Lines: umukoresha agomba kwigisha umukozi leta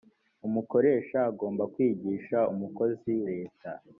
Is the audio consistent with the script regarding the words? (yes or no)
yes